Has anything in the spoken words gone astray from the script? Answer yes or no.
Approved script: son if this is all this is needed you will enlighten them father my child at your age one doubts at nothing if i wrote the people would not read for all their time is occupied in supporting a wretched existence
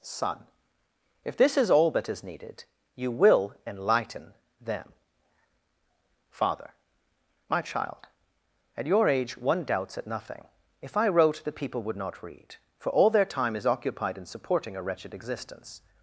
yes